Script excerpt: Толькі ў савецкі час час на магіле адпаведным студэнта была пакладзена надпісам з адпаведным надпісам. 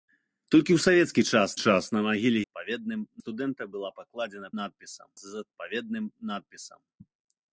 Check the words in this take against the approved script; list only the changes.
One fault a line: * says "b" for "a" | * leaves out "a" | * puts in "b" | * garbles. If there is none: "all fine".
all fine